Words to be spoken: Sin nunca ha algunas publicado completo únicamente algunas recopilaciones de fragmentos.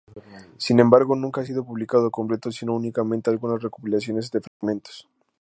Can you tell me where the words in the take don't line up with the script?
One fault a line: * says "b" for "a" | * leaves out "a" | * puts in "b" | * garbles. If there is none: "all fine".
* puts in "embargo"
* says "sido" for "algunas"
* puts in "sino"